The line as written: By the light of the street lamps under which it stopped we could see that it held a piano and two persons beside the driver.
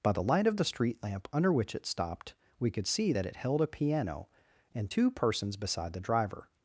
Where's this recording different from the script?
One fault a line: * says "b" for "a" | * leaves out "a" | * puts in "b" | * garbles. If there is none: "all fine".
* says "lamp" for "lamps"